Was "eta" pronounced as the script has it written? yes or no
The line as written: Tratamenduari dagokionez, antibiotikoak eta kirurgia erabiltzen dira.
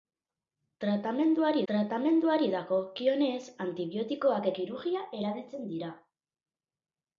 no